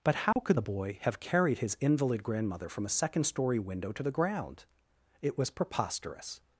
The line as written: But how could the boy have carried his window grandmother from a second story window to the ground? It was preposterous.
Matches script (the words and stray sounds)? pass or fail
fail